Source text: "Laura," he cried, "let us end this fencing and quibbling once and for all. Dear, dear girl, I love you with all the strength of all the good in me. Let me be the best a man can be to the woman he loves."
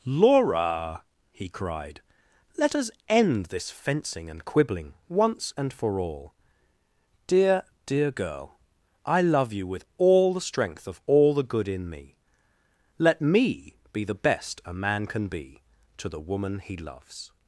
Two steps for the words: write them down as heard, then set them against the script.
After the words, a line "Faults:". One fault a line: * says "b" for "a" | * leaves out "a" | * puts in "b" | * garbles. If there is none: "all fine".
"Laura," he cried, "let us end this fencing and quibbling once and for all. Dear, dear girl, I love you with all the strength of all the good in me. Let me be the best a man can be to the woman he loves."
Faults:
all fine